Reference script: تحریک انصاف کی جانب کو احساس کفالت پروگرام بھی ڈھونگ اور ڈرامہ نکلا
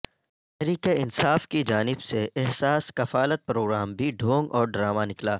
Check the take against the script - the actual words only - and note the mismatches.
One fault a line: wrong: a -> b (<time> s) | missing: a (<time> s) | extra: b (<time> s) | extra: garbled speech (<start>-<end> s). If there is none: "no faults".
wrong: کو -> سے (2.0 s)